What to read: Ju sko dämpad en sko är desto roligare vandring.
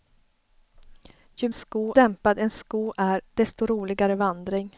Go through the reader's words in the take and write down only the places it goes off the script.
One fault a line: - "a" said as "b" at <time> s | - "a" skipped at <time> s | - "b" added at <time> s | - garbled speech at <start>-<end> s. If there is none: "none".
none